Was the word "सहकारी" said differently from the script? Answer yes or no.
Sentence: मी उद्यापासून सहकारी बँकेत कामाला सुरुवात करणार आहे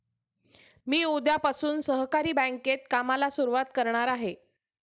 no